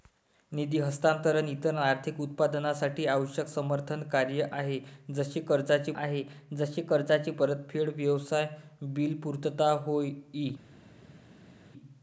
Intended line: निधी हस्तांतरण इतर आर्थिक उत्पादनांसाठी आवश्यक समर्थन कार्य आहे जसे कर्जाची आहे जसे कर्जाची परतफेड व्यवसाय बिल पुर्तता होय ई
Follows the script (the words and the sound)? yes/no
yes